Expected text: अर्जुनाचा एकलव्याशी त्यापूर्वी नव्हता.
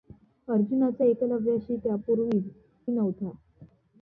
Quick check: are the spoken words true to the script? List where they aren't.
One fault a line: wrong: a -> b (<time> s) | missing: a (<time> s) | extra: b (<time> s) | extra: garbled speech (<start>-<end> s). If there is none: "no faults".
no faults